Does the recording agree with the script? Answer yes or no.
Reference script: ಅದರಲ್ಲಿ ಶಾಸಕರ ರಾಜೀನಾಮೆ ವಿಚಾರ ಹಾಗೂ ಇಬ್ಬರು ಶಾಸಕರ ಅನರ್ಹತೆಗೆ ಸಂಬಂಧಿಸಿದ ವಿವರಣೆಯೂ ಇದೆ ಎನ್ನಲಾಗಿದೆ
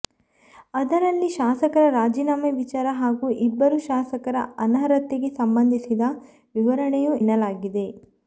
no